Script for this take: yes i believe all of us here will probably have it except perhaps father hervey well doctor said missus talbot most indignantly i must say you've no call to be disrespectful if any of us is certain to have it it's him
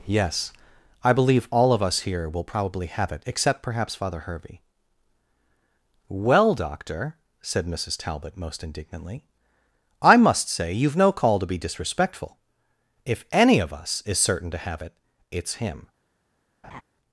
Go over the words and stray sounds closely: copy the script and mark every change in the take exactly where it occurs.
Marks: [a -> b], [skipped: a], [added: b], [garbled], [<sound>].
yes i believe all of us here will probably have it except perhaps father hervey well doctor said missus talbot most indignantly i must say you've no call to be disrespectful if any of us is certain to have it it's him [laugh]